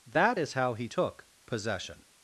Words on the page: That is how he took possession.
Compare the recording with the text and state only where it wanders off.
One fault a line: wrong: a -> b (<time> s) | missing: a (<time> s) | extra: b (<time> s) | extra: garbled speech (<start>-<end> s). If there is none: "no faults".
no faults